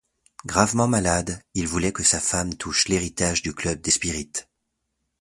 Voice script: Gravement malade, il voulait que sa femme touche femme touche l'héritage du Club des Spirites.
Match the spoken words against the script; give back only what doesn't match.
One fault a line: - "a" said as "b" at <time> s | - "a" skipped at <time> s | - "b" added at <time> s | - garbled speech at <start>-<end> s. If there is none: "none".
- "femme touche" skipped at 2.9 s